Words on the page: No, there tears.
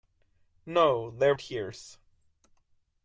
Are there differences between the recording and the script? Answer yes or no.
no